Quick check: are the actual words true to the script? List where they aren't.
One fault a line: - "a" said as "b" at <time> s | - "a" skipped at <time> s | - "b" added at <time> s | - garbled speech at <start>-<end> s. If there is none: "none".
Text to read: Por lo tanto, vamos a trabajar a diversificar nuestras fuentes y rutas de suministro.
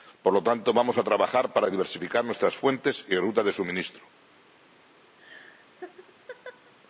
- "a" said as "para" at 1.5 s